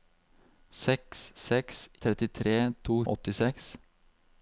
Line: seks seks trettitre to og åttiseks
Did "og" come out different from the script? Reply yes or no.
no